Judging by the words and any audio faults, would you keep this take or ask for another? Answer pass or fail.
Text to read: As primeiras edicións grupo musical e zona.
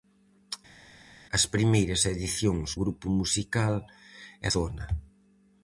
pass